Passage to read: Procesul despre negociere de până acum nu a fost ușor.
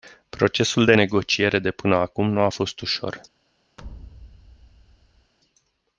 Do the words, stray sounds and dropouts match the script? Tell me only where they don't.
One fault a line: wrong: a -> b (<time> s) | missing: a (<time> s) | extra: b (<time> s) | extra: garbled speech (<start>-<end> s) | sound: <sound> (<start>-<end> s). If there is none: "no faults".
wrong: despre -> de (0.8 s)
sound: thud (3.8-5.3 s)